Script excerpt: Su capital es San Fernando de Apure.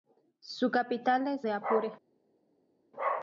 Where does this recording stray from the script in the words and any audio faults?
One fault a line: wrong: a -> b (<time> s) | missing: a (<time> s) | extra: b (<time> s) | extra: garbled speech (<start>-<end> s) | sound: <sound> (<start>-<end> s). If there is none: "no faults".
missing: San Fernando (1.4 s)